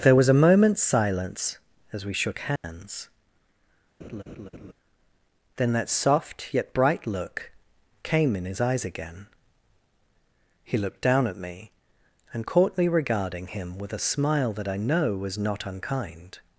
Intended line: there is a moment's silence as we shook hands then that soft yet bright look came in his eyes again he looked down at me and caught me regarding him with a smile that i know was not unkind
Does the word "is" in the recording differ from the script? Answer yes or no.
yes